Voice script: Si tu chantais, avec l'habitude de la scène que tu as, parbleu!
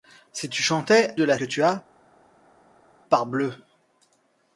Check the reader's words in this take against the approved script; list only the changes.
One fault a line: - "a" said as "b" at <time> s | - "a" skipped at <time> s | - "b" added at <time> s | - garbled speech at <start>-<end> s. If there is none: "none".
- "avec l'habitude" skipped at 1.1 s
- "scène" skipped at 1.4 s